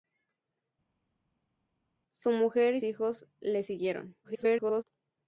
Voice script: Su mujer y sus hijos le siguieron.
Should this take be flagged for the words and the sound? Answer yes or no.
yes